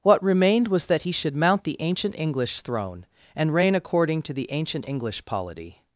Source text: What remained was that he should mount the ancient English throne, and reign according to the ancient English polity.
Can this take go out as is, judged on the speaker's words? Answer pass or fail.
pass